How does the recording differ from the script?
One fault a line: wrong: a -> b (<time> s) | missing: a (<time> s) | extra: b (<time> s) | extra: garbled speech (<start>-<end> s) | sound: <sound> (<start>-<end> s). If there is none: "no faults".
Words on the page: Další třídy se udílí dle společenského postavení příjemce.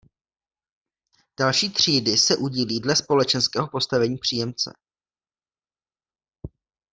no faults